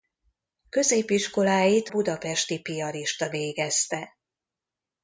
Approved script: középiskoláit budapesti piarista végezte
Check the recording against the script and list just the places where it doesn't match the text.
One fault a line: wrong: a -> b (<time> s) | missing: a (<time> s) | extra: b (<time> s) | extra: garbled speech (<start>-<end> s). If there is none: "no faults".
no faults